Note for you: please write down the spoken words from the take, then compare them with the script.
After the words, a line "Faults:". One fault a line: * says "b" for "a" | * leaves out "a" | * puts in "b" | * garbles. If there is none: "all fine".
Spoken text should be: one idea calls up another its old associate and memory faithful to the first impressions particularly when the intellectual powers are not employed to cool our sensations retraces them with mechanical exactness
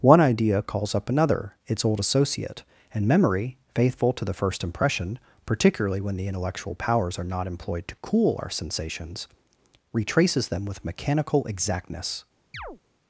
one idea calls up another its old associate and memory faithful to the first impression particularly when the intellectual powers are not employed to cool our sensations retraces them with mechanical exactness
Faults:
* says "impression" for "impressions"